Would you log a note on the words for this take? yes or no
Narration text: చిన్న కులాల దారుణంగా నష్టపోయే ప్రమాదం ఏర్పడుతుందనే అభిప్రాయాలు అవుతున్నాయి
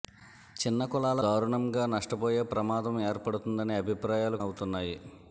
no